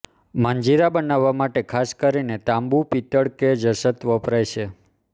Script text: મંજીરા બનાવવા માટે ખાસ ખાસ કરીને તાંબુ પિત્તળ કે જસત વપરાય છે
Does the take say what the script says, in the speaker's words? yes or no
no